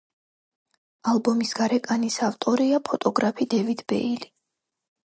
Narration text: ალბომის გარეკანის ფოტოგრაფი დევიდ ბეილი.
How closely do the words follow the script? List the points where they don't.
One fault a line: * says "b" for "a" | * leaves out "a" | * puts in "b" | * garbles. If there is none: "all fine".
* puts in "ავტორია"